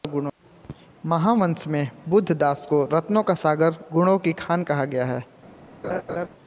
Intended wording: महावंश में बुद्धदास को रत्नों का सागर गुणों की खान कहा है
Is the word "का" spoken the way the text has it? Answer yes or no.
yes